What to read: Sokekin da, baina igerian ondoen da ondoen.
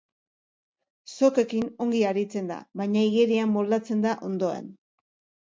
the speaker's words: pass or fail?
fail